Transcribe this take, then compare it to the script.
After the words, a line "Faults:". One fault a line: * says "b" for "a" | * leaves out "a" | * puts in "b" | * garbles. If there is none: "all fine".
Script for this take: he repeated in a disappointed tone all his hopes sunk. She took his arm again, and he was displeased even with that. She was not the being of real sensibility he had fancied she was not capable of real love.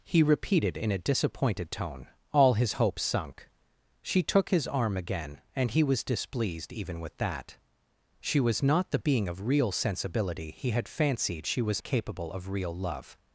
he repeated in a disappointed tone all his hopes sunk. She took his arm again, and he was displeased even with that. She was not the being of real sensibility he had fancied she was capable of real love.
Faults:
* leaves out "not"